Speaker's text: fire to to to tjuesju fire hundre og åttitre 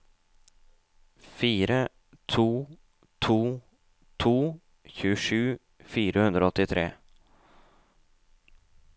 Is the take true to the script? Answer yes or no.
yes